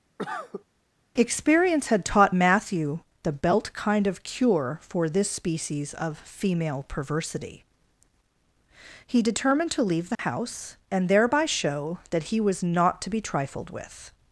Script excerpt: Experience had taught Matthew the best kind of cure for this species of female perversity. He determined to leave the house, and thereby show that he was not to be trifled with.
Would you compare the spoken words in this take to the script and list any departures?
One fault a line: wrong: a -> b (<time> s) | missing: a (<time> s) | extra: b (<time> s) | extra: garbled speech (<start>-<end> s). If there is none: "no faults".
wrong: best -> belt (3.3 s)